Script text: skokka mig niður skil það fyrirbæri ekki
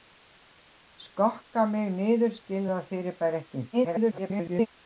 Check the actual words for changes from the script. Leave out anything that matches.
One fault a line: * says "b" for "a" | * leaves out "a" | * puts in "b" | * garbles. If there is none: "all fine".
* garbles